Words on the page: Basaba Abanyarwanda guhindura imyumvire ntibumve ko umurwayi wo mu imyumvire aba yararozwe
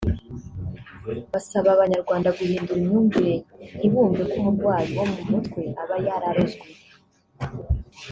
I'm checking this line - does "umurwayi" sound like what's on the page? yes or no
yes